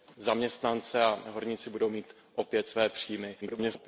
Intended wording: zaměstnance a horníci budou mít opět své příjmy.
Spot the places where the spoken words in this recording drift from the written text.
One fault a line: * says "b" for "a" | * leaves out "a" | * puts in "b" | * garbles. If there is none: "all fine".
* garbles